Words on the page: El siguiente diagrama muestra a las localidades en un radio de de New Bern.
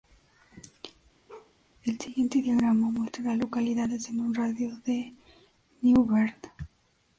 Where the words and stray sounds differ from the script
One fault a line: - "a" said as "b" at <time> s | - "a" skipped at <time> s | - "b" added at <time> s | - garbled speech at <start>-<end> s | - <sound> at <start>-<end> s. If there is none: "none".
- bark at 1.3-1.5 s